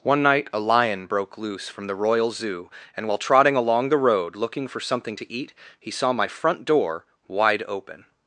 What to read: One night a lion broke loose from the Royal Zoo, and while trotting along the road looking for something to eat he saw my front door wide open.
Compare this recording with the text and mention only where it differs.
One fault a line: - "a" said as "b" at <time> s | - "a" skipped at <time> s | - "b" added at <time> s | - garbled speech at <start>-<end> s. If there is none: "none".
none